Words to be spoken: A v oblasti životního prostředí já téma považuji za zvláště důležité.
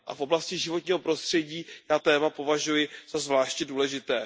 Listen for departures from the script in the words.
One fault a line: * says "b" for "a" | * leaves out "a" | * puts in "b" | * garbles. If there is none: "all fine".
all fine